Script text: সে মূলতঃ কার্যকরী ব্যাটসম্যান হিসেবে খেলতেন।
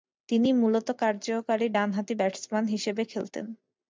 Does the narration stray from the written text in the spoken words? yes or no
yes